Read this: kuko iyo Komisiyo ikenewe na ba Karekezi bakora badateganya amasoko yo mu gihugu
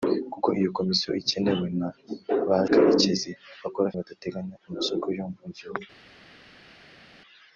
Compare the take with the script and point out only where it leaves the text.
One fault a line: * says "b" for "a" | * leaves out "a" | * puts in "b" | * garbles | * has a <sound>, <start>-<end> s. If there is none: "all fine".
all fine